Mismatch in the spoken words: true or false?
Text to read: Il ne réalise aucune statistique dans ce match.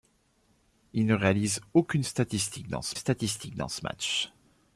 true